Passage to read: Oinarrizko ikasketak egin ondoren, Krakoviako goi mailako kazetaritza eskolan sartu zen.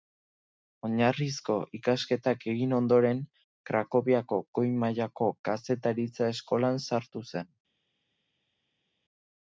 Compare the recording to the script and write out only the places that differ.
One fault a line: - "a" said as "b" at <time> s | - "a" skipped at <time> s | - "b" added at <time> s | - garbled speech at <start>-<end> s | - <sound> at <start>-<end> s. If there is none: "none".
none